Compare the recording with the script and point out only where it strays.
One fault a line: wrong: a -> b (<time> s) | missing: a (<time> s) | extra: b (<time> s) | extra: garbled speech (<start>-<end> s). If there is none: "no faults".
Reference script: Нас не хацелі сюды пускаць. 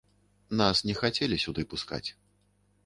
no faults